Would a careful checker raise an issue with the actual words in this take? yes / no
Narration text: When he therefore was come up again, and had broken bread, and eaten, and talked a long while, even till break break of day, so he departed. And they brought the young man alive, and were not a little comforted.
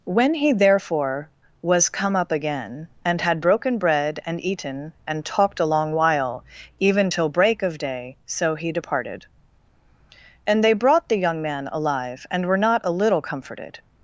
yes